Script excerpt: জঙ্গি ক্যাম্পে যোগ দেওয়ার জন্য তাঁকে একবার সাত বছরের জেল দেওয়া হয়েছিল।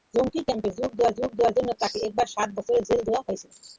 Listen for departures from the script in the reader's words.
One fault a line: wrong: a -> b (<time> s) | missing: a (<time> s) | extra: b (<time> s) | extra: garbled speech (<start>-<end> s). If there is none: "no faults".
extra: যোগ দেওয়ার (1.2 s)